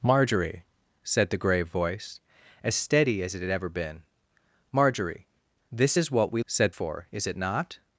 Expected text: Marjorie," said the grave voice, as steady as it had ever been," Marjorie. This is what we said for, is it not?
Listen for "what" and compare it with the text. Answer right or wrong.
right